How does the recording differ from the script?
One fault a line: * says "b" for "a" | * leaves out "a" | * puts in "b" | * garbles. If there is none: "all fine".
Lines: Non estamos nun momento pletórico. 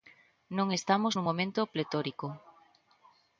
all fine